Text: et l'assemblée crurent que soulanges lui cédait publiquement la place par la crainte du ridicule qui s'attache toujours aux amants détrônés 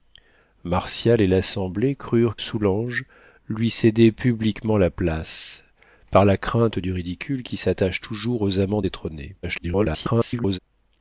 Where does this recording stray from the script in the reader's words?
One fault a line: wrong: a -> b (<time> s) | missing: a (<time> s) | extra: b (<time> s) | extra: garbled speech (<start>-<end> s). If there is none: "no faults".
missing: que (2.4 s)
extra: garbled speech (9.4-10.6 s)